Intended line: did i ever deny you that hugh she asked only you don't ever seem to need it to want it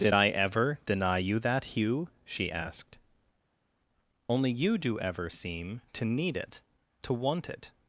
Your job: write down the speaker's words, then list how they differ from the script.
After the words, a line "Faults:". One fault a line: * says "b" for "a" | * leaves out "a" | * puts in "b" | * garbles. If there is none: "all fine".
did i ever deny you that hugh she asked only you do ever seem to need it to want it
Faults:
* says "do" for "don't"